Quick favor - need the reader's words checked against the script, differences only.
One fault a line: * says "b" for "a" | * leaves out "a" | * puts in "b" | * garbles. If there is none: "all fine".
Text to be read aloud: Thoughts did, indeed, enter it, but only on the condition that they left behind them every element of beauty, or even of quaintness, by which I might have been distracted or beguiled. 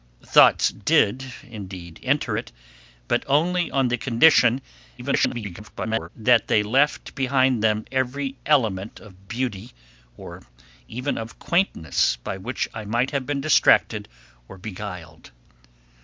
* garbles